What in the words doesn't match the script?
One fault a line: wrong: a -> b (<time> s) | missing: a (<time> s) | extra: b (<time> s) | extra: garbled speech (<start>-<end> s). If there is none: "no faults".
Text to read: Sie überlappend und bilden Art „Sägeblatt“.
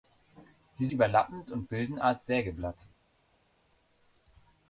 no faults